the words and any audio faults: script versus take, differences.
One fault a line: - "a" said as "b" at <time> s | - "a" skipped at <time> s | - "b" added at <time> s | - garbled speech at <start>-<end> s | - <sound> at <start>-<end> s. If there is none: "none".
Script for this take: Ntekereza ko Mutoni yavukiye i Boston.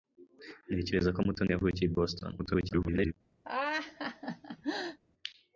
- garbled speech at 2.4-3.1 s
- laugh at 3.4-5.0 s